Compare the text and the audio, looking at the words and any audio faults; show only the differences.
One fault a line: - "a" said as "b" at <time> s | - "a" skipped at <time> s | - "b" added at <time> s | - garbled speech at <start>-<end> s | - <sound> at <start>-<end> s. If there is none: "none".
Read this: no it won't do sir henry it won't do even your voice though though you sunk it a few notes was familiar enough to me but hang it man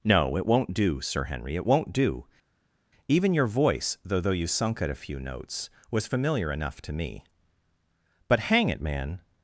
none